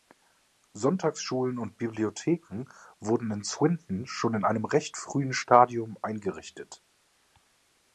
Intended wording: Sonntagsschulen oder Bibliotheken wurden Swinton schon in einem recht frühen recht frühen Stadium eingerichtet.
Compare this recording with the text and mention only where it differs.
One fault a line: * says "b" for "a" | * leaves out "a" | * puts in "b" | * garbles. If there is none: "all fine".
* says "und" for "oder"
* puts in "in"
* leaves out "recht frühen"